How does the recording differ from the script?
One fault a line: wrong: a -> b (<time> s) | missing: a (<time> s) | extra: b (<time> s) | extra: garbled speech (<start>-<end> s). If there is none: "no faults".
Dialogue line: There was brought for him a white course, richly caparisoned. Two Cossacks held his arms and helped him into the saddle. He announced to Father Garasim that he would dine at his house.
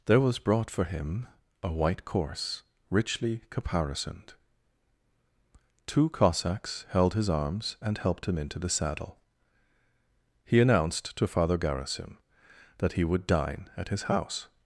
no faults